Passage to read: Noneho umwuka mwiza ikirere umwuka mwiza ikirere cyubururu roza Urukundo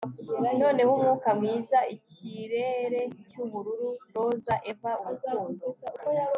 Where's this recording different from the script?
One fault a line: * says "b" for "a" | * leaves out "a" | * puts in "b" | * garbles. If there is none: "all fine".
* leaves out "umwuka mwiza ikirere"
* puts in "Eva"